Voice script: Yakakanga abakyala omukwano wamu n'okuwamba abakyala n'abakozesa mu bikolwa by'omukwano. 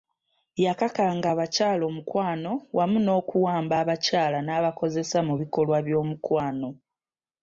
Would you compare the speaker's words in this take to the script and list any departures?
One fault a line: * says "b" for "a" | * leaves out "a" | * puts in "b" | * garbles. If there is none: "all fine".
all fine